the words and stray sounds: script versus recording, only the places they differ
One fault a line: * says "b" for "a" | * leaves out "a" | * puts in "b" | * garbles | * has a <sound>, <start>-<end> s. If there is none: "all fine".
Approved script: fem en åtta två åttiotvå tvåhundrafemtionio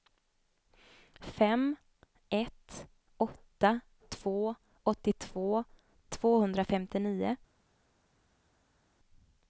* says "ett" for "en"